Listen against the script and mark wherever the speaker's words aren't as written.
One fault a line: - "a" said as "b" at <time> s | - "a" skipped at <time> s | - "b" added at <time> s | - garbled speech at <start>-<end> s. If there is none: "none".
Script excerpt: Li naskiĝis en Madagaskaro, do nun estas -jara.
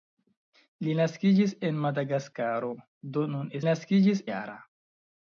- "estas" said as "naskiĝis" at 3.7 s